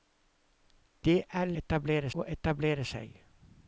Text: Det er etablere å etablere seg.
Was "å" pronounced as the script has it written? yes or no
yes